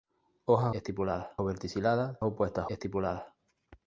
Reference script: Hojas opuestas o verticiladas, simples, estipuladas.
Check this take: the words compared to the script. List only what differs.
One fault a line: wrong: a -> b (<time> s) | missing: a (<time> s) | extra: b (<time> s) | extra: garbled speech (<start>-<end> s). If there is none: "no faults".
wrong: opuestas -> estipuladas (0.7 s)
wrong: simples -> opuestas (2.2 s)